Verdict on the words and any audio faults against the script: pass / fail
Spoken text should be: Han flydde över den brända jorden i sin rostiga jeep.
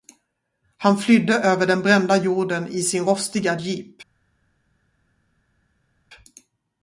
pass